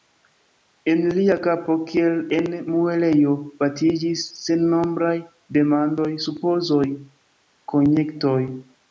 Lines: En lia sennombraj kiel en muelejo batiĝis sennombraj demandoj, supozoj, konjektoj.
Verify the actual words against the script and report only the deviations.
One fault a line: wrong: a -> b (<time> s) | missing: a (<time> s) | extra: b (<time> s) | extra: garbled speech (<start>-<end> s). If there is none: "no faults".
wrong: sennombraj -> kapo (1.5 s)